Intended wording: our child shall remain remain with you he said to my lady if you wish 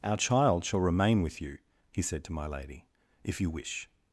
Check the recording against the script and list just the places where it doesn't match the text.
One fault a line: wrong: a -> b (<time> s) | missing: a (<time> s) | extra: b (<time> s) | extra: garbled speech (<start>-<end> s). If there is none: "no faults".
missing: remain (1.2 s)